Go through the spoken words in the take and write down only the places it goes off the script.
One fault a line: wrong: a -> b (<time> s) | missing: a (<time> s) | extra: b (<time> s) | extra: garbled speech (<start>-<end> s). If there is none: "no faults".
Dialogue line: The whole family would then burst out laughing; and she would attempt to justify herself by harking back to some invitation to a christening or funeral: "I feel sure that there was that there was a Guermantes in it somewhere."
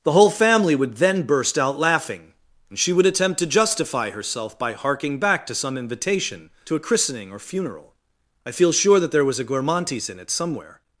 missing: that there was (9.4 s)